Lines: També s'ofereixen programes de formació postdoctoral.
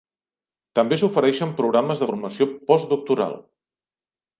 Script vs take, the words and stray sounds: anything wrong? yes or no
no